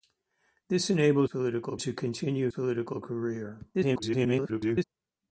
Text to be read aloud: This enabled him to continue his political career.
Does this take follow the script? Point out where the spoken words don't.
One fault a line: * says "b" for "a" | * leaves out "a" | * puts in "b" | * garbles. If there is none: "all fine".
* says "political" for "him"
* leaves out "his"
* garbles